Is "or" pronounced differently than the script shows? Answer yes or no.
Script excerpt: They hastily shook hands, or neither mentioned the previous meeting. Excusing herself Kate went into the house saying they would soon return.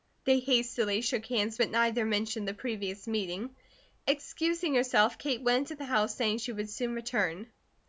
yes